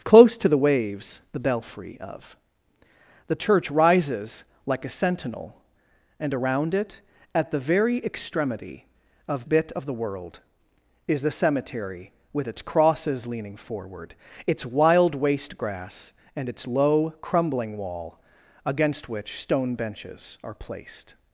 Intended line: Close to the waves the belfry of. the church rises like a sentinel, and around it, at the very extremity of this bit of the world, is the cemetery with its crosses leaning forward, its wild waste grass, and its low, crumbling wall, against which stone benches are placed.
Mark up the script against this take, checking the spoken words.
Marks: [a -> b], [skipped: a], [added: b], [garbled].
Close to the waves the belfry of. the church rises like a sentinel, and around it, at the very extremity of [skipped: this] bit of the world, is the cemetery with its crosses leaning forward, its wild waste grass, and its low, crumbling wall, against which stone benches are placed.